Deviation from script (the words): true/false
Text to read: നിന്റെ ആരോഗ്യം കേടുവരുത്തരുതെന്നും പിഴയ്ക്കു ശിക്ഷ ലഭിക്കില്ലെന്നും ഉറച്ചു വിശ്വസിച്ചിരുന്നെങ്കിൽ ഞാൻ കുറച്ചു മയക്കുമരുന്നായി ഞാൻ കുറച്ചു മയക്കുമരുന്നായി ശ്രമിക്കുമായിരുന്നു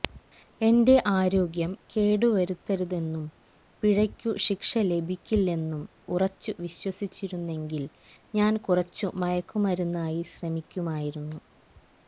true